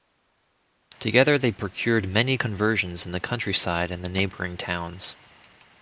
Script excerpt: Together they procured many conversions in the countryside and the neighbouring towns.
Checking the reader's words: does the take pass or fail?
pass